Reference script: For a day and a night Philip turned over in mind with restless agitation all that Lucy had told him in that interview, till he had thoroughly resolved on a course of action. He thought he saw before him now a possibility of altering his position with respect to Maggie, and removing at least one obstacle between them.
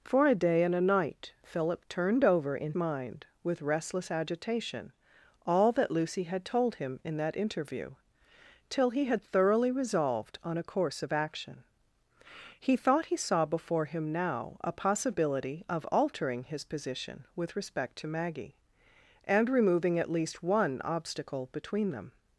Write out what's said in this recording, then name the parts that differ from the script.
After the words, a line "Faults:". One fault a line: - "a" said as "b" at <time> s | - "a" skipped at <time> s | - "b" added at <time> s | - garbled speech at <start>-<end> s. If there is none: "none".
For a day and a night Philip turned over in mind with restless agitation all that Lucy had told him in that interview, till he had thoroughly resolved on a course of action. He thought he saw before him now a possibility of altering his position with respect to Maggie, and removing at least one obstacle between them.
Faults:
none